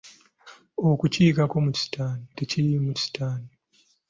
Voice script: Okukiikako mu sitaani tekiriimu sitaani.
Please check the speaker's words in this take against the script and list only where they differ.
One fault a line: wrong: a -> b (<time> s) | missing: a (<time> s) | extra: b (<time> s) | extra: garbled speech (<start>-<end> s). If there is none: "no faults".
no faults